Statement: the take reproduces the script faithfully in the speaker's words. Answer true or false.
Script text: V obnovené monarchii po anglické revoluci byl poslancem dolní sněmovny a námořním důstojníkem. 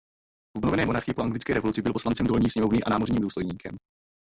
true